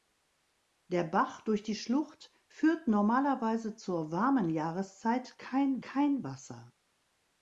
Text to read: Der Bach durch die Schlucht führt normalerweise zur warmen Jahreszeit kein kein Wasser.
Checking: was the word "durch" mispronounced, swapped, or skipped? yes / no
no